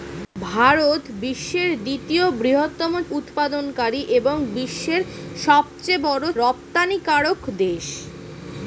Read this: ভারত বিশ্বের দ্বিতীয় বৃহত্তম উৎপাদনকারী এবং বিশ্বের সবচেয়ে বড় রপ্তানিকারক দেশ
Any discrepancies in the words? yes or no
no